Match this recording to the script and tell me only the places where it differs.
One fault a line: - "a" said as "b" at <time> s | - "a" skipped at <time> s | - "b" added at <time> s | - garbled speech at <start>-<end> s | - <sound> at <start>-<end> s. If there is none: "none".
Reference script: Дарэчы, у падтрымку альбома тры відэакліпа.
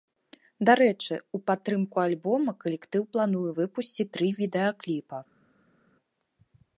- "калектыў плануе выпусціць" added at 2.6 s